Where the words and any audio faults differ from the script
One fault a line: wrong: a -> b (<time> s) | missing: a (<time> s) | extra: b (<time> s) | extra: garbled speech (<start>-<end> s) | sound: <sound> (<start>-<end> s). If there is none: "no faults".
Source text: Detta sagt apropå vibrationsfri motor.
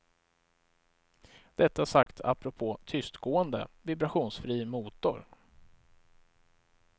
sound: dropout (2.0-2.1 s)
extra: tystgående (2.9 s)